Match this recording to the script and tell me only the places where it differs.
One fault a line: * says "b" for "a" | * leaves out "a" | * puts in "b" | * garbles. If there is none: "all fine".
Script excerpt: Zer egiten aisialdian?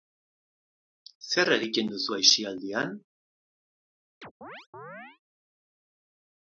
* puts in "duzu"